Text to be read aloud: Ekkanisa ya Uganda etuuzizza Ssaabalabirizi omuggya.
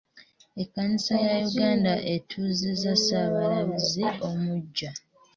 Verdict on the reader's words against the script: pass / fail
pass